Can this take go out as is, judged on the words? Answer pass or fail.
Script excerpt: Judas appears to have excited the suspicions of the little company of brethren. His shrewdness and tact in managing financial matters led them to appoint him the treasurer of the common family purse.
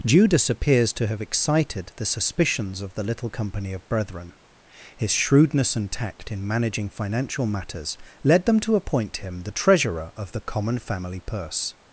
pass